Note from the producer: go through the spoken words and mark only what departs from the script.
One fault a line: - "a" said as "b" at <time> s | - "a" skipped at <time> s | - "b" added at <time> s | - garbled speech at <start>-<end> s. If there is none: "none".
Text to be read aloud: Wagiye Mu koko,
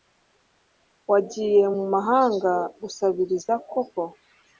- "mahanga gusabiriza" added at 1.9 s